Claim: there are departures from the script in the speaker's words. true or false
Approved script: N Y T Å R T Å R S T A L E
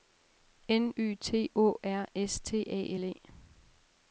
true